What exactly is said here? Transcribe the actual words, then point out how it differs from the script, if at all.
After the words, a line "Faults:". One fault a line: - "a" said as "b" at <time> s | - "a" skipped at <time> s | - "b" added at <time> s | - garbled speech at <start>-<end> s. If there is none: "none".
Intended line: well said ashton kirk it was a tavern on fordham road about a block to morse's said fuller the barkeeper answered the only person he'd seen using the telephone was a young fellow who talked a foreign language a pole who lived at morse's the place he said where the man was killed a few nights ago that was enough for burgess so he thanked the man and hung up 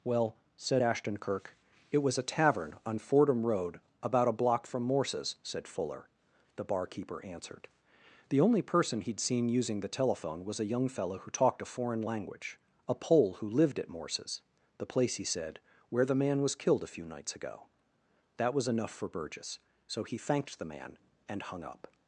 well said ashton kirk it was a tavern on fordham road about a block from morse's said fuller the barkeeper answered the only person he'd seen using the telephone was a young fellow who talked a foreign language a pole who lived at morse's the place he said where the man was killed a few nights ago that was enough for burgess so he thanked the man and hung up
Faults:
- "to" said as "from" at 4.6 s